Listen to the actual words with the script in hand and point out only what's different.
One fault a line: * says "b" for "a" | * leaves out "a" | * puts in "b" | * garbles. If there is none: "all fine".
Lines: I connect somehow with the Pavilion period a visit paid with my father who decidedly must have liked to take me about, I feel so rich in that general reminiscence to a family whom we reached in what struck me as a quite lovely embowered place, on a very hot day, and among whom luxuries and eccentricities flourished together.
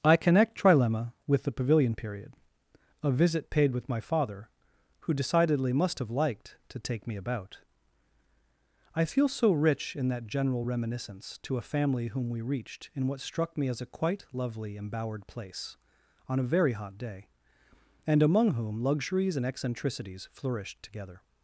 * says "trilemma" for "somehow"